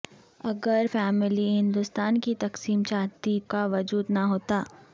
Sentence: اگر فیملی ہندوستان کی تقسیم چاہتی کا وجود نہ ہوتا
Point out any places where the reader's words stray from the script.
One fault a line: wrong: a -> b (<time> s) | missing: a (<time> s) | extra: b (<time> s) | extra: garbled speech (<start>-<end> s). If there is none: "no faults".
no faults